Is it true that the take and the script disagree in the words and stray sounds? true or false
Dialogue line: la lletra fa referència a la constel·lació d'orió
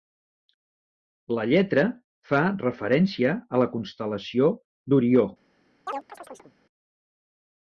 true